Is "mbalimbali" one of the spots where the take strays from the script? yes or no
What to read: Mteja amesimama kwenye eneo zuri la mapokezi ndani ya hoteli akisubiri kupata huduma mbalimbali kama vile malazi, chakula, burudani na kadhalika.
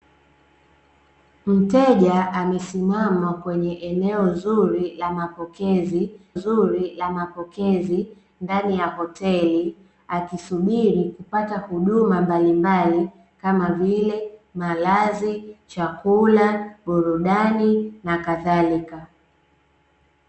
no